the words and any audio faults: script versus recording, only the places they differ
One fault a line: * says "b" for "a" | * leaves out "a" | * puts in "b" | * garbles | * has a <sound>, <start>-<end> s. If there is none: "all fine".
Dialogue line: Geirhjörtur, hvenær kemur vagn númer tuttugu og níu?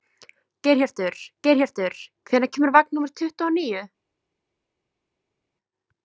* puts in "geirhjörtur"